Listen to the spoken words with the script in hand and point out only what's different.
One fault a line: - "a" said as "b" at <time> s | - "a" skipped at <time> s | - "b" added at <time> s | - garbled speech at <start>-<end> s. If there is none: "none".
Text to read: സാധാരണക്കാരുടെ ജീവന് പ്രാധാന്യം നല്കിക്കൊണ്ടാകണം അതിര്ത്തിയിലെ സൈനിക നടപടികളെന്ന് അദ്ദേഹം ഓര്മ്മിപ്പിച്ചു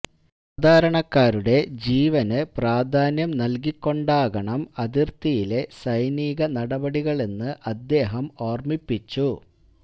none